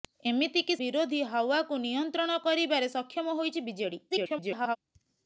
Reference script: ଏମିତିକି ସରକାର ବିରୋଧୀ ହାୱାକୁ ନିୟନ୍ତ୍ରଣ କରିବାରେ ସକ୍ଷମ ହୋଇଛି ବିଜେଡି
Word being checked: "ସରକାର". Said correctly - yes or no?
no